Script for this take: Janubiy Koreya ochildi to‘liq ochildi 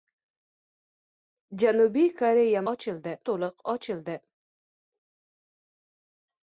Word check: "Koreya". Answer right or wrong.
right